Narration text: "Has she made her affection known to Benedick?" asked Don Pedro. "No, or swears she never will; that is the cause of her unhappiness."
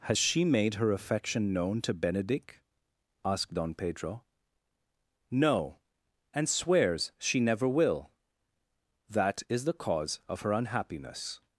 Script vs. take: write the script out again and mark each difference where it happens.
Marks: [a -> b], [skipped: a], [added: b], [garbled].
"Has she made her affection known to Benedick?" asked Don Pedro. "No, [or -> and] swears she never will; that is the cause of her unhappiness."